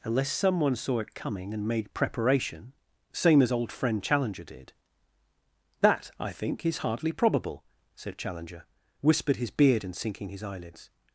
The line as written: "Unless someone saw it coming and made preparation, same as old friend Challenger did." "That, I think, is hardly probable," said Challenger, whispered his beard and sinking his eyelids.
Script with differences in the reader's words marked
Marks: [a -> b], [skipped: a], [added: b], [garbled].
"Unless someone saw it coming and made preparation, same as old friend Challenger did." "That, I think, is hardly probable," said Challenger, whispered his beard and sinking his eyelids.